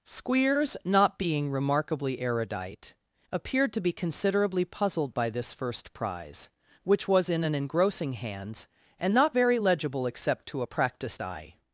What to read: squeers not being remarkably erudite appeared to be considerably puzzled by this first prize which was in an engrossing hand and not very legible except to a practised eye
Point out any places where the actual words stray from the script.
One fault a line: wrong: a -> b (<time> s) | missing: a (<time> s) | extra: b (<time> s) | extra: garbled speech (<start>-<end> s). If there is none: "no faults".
wrong: hand -> hands (8.1 s)